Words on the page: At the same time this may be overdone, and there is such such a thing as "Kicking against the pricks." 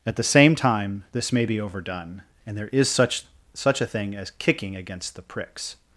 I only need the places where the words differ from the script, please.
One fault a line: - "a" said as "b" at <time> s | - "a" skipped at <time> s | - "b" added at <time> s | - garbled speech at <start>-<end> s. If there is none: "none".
none